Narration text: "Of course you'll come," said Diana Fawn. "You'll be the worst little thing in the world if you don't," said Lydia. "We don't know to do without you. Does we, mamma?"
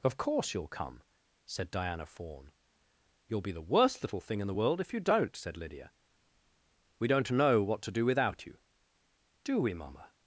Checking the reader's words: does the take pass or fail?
fail